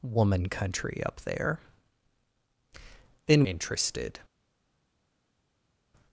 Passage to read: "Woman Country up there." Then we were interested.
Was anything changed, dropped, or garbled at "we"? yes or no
yes